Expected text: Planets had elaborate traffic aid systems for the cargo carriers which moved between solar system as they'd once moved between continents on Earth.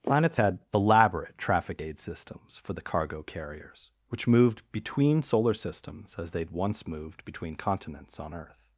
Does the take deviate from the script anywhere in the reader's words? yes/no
yes